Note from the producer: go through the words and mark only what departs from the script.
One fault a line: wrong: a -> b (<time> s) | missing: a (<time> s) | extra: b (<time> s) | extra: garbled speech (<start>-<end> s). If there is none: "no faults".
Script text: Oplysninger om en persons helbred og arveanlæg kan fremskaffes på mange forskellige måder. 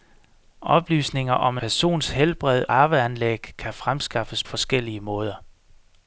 missing: en (1.6 s)
missing: og (2.6 s)
missing: på mange (4.4 s)